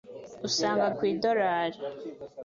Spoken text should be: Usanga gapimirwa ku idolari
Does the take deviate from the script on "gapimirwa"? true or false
true